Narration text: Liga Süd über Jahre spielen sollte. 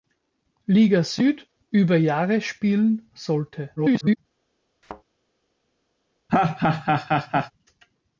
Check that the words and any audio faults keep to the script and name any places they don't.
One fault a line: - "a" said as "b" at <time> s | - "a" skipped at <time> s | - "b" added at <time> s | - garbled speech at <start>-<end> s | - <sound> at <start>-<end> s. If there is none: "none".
- garbled speech at 3.8-4.2 s
- thud at 4.8-5.0 s
- laugh at 6.3-7.5 s